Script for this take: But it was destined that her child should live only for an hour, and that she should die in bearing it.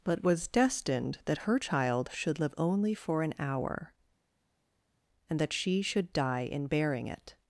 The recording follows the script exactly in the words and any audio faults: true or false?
false